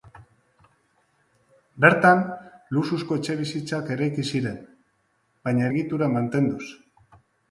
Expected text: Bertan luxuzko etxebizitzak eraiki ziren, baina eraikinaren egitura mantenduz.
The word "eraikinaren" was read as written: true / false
false